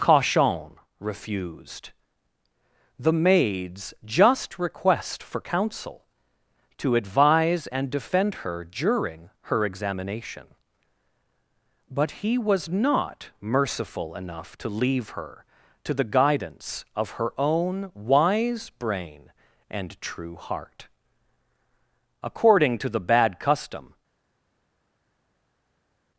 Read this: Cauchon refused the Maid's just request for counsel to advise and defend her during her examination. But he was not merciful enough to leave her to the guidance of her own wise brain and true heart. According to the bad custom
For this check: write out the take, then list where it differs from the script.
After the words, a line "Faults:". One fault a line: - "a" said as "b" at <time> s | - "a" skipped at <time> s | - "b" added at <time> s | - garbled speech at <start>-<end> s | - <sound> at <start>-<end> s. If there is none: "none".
Cauchon refused the Maid's just request for counsel to advise and defend her during her examination. But he was not merciful enough to leave her to the guidance of her own wise brain and true heart. According to the bad custom
Faults:
none